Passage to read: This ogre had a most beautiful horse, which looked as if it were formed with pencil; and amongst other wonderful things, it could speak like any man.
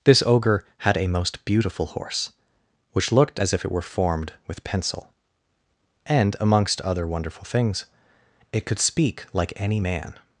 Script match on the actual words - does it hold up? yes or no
yes